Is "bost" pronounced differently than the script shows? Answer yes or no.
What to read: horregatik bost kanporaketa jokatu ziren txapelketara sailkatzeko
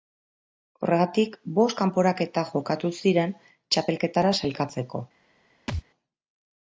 no